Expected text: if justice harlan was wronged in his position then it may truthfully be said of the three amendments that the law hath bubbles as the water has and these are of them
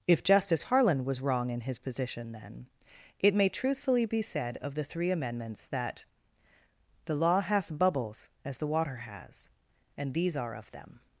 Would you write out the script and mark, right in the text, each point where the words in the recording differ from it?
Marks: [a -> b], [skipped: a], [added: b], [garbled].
if justice harlan was [wronged -> wrong] in his position then it may truthfully be said of the three amendments that the law hath bubbles as the water has and these are of them